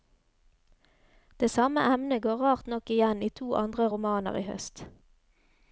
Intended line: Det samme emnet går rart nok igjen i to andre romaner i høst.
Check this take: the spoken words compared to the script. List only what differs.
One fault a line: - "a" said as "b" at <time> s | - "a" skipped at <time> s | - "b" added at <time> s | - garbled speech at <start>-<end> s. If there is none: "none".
none